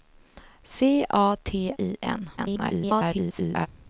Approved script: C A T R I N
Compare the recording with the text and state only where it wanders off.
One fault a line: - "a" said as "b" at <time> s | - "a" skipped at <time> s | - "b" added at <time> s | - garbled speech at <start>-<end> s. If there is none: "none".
- "R" skipped at 1.8 s
- garbled speech at 2.4-3.7 s